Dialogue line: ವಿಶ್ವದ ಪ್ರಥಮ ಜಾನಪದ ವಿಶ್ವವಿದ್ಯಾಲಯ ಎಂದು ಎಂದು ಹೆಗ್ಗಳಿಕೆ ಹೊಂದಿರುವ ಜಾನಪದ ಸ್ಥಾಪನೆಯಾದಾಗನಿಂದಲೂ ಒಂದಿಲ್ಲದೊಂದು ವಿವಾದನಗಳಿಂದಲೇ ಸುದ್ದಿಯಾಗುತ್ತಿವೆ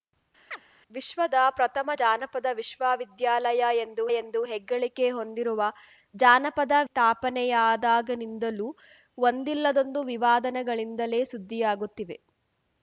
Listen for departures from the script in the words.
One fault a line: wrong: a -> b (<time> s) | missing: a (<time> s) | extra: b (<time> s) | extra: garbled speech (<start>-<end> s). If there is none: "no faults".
no faults